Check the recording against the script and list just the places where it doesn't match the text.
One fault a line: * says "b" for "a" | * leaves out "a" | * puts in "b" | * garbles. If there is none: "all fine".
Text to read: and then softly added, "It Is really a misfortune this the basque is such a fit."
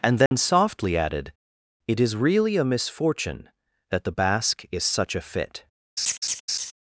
* says "that" for "this"